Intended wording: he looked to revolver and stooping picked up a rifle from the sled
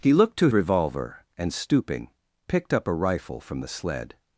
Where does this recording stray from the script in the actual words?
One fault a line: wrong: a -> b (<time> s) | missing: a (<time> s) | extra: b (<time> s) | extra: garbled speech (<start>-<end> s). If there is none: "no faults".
no faults